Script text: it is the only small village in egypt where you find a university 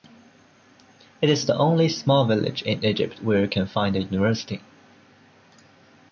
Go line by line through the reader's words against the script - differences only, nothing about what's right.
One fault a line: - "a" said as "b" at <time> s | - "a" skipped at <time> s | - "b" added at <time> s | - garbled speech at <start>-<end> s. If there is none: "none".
- "can" added at 3.5 s